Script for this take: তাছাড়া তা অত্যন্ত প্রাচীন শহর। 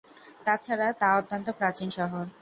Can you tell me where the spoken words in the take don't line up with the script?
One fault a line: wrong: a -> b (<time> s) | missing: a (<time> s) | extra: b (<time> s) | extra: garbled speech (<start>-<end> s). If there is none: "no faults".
no faults